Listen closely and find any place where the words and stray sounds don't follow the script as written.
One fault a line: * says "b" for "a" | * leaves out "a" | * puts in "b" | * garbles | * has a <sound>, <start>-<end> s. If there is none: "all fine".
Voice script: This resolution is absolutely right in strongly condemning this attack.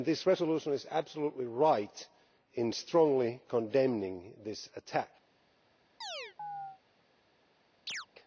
* has a chirp, 6.0-6.8 s
* has a chirp, 7.9-8.1 s